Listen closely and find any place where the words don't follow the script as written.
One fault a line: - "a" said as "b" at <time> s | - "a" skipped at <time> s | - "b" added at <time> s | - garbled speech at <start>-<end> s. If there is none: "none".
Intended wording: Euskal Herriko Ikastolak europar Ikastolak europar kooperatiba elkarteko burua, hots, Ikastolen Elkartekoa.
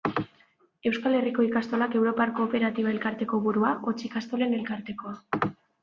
- "Ikastolak europar" skipped at 2.3 s